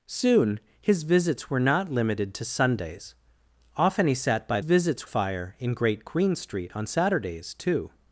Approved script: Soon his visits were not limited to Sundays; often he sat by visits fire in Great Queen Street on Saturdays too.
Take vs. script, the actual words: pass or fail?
pass